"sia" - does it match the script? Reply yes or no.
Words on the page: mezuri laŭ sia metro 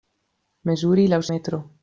no